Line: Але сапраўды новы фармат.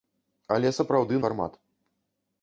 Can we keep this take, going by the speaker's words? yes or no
no